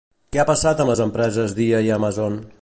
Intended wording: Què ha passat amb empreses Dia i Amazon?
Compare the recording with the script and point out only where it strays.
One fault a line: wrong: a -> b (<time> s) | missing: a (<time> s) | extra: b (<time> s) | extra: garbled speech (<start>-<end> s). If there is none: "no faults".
extra: les (0.9 s)